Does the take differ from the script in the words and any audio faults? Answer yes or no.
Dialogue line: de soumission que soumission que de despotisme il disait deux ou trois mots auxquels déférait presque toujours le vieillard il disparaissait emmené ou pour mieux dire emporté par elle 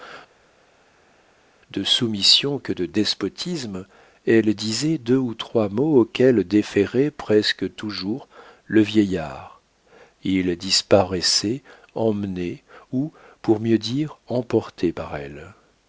yes